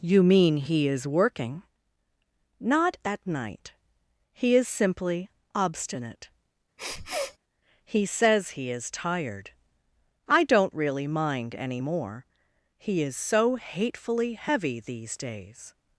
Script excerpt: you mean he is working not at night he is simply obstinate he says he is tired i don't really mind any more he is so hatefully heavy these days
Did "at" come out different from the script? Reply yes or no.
no